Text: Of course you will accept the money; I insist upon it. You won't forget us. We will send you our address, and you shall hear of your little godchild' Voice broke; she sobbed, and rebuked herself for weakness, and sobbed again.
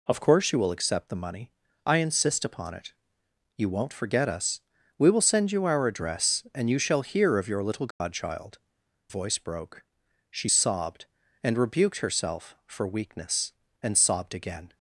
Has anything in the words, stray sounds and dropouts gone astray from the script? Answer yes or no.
yes